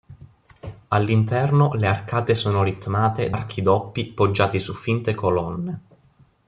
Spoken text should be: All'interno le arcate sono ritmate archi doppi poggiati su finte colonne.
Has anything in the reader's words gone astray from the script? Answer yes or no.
no